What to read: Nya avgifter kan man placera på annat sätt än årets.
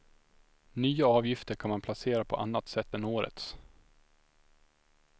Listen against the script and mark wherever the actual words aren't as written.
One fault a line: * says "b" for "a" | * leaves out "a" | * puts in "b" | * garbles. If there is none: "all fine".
all fine